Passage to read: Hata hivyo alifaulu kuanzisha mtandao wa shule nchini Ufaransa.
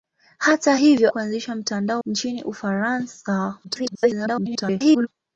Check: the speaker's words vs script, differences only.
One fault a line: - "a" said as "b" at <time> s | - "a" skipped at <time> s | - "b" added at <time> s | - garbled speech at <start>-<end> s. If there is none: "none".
- "alifaulu" skipped at 1.1 s
- "wa shule" skipped at 2.0 s
- garbled speech at 3.6-5.1 s